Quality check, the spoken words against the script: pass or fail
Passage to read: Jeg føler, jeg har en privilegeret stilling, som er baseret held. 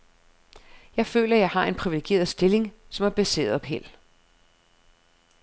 pass